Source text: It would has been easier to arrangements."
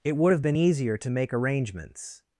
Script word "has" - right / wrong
wrong